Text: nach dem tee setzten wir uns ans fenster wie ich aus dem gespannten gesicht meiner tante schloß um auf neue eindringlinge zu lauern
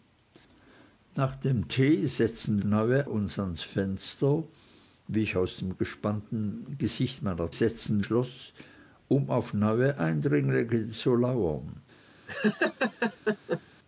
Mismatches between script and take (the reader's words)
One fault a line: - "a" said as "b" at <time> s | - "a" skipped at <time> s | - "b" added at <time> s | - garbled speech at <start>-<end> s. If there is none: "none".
- "wir" said as "neue" at 2.6 s
- "tante" said as "setzten" at 7.5 s